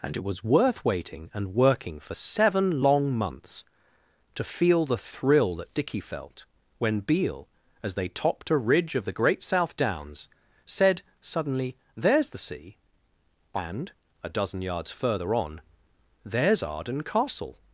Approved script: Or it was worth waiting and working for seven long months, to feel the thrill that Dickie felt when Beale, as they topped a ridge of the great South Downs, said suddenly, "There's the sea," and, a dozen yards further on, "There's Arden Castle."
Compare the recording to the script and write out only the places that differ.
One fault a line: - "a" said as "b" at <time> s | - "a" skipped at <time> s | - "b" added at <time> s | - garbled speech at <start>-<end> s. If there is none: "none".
- "Or" said as "And" at 0.0 s